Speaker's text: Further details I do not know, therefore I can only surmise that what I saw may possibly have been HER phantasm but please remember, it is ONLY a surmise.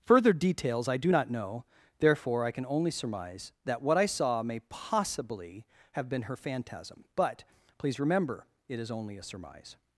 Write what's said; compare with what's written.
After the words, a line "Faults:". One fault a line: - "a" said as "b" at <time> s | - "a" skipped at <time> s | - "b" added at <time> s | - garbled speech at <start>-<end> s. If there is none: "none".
Further details I do not know, therefore I can only surmise that what I saw may possibly have been HER phantasm but please remember, it is ONLY a surmise.
Faults:
none